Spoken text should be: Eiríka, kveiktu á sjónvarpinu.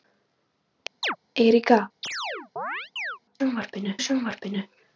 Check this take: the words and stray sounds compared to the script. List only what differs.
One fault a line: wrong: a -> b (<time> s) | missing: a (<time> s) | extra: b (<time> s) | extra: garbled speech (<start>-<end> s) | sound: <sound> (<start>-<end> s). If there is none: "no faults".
sound: chirp (1.0-1.2 s)
sound: chirp (2.0-3.2 s)
wrong: kveiktu -> sjónvarpinu (3.4 s)